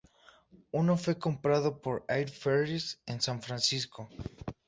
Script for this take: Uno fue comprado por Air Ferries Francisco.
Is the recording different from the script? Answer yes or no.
yes